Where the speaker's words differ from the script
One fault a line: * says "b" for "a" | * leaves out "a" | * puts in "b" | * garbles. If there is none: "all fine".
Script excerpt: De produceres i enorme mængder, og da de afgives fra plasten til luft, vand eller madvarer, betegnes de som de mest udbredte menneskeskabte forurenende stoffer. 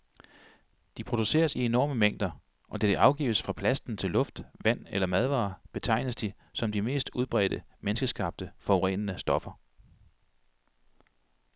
all fine